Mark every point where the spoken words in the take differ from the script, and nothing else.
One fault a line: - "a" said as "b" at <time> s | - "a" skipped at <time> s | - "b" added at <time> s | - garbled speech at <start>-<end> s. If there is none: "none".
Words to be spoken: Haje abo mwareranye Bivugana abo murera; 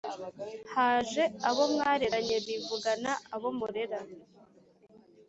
none